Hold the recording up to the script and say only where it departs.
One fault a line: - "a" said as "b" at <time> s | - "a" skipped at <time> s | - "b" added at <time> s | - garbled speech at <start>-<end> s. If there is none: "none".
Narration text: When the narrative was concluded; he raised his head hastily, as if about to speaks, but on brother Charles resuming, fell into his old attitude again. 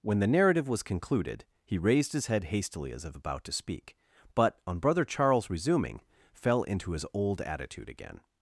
- "speaks" said as "speak" at 3.5 s